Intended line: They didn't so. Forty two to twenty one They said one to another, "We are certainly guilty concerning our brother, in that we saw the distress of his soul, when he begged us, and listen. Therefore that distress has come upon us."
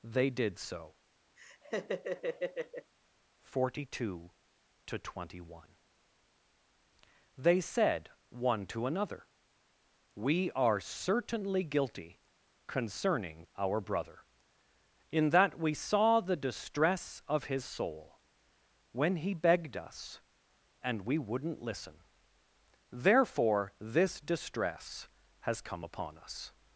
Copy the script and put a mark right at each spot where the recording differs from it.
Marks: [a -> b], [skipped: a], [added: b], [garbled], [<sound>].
They [didn't -> did] so. [laugh] Forty two to twenty one They said one to another, "We are certainly guilty concerning our brother, in that we saw the distress of his soul, when he begged us, and [added: we wouldn't] listen. Therefore [that -> this] distress has come upon us."